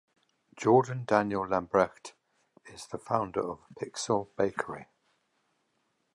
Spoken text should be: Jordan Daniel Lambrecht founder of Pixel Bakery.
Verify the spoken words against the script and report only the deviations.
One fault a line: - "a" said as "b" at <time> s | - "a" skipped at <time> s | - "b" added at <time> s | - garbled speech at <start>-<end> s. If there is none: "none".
- "is the" added at 2.7 s